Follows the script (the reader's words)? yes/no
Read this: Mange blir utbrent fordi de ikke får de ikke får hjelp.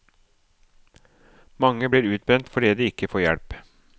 no